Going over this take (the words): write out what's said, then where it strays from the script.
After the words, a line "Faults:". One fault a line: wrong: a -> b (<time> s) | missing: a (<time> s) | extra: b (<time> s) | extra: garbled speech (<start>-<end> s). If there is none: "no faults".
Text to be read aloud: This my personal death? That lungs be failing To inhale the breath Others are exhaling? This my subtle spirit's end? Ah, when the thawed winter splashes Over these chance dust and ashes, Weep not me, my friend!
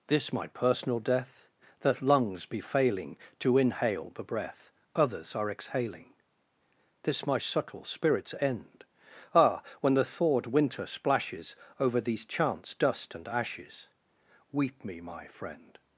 This my personal death? That lungs be failing To inhale the breath Others are exhaling? This my subtle spirit's end? Ah, when the thawed winter splashes Over these chance dust and ashes, Weep me, my friend!
Faults:
missing: not (14.8 s)